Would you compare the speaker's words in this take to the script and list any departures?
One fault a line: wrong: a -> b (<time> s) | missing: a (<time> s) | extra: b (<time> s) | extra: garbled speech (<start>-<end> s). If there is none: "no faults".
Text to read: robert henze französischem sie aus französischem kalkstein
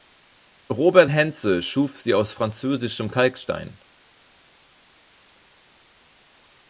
wrong: französischem -> schuf (1.6 s)